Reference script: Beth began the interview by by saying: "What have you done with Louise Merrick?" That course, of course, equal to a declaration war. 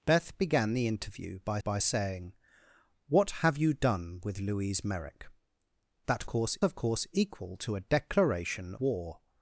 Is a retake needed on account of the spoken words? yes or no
no